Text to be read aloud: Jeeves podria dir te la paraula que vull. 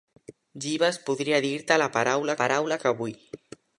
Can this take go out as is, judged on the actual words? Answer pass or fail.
fail